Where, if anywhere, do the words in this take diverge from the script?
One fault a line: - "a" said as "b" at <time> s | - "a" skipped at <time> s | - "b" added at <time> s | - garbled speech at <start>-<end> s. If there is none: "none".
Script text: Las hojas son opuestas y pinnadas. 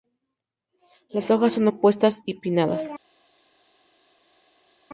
none